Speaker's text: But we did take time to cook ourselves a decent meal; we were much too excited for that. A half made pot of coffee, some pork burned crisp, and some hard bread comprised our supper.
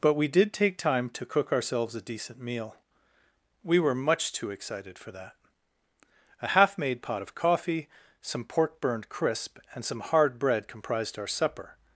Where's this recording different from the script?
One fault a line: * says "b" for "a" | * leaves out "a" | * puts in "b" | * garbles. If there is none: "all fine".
all fine